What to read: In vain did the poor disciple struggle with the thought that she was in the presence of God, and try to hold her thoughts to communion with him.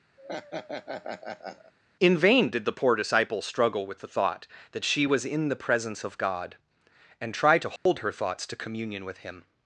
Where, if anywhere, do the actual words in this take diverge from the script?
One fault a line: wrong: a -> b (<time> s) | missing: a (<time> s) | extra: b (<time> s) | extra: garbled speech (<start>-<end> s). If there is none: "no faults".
no faults